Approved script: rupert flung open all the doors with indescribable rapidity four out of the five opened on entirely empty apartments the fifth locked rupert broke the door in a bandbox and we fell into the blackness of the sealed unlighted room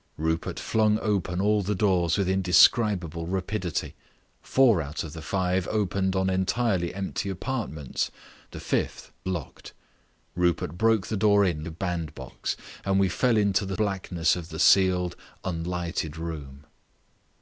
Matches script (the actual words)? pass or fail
pass